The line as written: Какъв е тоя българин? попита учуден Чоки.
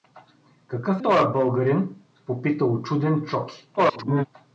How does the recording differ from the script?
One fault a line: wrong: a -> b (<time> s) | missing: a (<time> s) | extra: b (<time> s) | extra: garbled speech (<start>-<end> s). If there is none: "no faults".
missing: е (1.0 s)
extra: garbled speech (3.8-4.3 s)